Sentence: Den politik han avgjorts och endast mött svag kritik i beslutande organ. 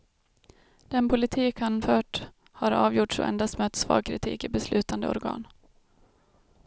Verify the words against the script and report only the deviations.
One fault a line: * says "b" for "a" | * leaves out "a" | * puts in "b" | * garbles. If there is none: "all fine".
* puts in "fört har"